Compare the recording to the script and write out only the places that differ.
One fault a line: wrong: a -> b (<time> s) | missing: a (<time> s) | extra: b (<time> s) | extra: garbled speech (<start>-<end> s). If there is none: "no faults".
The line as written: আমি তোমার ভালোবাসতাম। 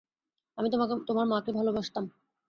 extra: মাকে (1.3 s)